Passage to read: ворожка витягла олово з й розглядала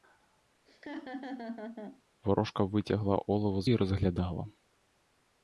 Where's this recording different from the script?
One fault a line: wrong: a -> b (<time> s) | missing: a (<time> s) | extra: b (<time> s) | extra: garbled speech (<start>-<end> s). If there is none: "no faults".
no faults